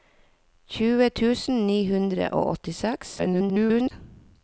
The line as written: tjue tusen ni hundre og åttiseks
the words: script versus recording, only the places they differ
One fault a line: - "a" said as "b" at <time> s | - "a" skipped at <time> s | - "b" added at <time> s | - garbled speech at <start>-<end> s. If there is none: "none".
- garbled speech at 3.2-3.9 s